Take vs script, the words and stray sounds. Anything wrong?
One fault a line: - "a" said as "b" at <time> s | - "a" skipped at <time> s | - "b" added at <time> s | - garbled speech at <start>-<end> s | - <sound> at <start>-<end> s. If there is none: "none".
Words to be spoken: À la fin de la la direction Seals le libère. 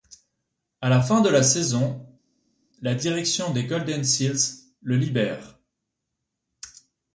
- "saison" added at 1.4 s
- "des Golden" added at 3.5 s